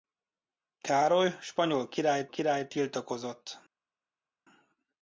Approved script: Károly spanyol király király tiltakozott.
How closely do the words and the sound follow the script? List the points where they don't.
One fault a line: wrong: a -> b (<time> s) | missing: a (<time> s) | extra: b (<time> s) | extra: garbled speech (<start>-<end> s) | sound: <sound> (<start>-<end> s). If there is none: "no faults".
no faults